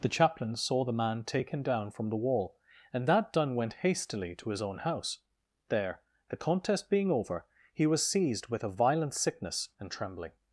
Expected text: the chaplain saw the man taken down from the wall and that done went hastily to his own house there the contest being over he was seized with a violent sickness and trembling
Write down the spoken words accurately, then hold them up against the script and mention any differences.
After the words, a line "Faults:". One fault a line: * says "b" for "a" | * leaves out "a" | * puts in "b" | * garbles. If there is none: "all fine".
the chaplain saw the man taken down from the wall and that done went hastily to his own house there the contest being over he was seized with a violent sickness and trembling
Faults:
all fine